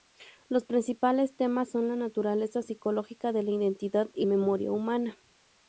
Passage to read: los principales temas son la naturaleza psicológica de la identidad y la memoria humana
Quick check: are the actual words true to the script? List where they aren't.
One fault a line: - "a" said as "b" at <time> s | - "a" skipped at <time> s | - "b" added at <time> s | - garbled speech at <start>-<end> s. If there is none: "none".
- "la" skipped at 4.2 s